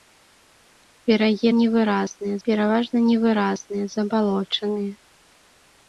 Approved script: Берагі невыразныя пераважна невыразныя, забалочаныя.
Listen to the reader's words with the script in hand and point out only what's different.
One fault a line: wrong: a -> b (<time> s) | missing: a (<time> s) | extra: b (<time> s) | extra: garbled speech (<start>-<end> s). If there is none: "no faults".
no faults